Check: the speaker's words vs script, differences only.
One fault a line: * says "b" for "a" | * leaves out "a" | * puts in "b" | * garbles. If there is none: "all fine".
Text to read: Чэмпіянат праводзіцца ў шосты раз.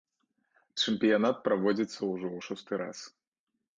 * puts in "ўжо"